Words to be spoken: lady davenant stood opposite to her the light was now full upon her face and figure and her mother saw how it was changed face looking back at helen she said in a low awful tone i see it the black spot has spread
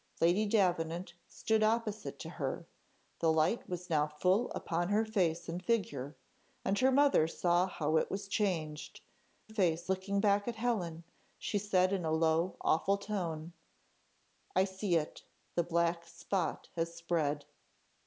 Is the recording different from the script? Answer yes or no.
no